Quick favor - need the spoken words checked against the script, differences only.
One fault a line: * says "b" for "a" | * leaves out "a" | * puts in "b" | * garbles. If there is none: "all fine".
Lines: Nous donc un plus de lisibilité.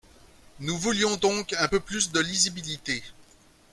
* puts in "voulions"
* puts in "peu"